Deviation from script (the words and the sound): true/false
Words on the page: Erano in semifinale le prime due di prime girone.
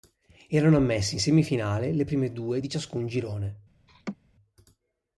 true